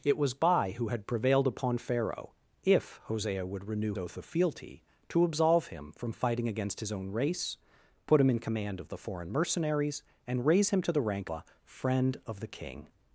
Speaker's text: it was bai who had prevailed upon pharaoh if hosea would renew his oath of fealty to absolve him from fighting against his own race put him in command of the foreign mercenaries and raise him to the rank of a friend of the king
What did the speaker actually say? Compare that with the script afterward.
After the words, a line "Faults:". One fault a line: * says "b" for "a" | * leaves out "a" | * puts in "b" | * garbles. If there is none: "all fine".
it was bai who had prevailed upon pharaoh if hosea would renew oath of fealty to absolve him from fighting against his own race put him in command of the foreign mercenaries and raise him to the rank a friend of the king
Faults:
* leaves out "his"
* leaves out "of"